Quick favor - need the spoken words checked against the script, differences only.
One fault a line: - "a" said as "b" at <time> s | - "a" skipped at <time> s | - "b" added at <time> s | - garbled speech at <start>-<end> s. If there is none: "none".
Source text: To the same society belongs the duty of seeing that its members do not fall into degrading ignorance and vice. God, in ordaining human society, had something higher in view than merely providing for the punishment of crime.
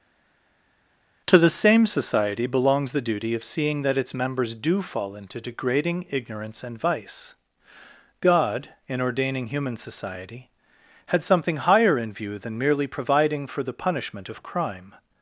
- "not" skipped at 4.8 s